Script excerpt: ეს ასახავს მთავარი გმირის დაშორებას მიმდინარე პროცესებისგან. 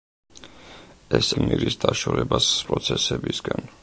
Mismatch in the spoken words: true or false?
true